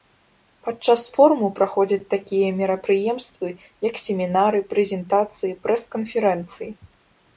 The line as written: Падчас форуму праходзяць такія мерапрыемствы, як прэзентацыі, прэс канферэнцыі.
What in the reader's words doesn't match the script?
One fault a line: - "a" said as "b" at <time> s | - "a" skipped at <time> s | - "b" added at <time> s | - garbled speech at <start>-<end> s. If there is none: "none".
- "семінары" added at 4.0 s